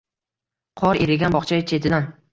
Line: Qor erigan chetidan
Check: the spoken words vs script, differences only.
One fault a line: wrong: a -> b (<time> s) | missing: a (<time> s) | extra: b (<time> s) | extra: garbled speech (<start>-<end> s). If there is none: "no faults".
extra: bog'cha (1.3 s)